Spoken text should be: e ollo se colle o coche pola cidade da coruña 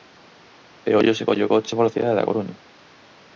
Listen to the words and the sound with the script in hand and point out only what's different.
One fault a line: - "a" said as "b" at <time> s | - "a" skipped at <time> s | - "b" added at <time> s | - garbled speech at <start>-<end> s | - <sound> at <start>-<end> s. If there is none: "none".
none